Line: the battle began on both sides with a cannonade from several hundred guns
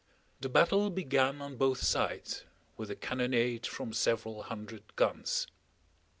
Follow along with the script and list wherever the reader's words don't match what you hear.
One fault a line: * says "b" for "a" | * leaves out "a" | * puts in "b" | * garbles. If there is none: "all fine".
all fine